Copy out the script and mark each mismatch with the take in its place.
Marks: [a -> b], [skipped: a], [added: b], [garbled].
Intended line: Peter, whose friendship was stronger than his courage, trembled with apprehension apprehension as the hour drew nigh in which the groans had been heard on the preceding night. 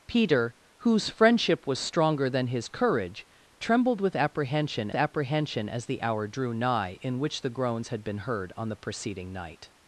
Peter, whose friendship was stronger than his courage, trembled with apprehension apprehension as the hour drew nigh in which the groans had been heard on the preceding night.